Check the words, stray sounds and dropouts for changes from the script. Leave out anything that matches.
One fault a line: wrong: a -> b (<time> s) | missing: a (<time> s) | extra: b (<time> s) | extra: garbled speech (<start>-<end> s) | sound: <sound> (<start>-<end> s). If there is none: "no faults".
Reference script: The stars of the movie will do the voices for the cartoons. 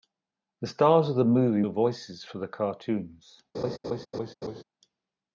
missing: will do (1.6 s)
sound: laugh (3.5-4.6 s)